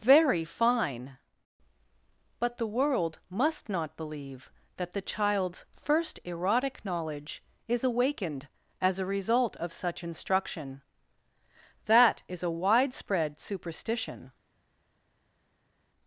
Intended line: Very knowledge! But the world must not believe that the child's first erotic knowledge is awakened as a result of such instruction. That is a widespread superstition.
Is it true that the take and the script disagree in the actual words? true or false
true